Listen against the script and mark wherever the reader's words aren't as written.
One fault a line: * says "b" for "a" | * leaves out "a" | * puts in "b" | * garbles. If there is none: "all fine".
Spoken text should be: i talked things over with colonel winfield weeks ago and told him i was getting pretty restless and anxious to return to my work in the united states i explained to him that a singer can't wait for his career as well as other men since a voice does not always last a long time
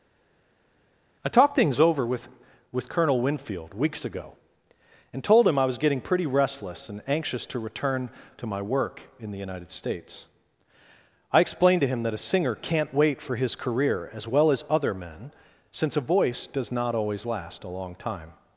* puts in "with"